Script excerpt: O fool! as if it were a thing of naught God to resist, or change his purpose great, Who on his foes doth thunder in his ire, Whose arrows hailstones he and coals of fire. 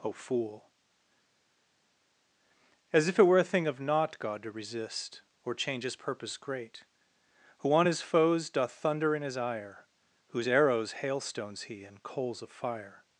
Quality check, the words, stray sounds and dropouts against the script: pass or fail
pass